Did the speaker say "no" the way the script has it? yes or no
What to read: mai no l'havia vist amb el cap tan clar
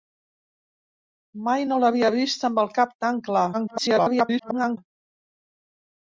yes